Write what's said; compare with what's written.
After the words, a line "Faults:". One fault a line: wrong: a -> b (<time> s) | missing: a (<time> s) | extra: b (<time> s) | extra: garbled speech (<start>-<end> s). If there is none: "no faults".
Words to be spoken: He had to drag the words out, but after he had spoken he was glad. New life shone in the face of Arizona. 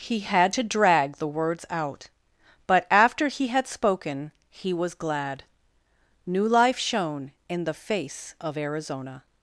He had to drag the words out, but after he had spoken he was glad. New life shone in the face of Arizona.
Faults:
no faults